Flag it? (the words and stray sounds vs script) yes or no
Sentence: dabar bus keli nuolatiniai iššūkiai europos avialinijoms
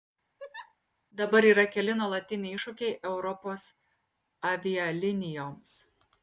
yes